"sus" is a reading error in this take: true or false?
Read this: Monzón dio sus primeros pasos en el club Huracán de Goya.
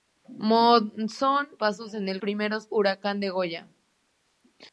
true